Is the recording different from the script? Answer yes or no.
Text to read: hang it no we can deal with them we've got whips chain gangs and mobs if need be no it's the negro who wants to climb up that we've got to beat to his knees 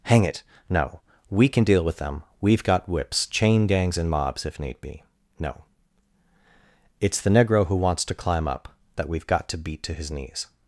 no